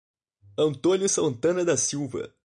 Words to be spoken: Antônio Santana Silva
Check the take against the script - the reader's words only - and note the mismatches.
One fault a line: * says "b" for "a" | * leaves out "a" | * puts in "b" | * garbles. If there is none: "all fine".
* puts in "da"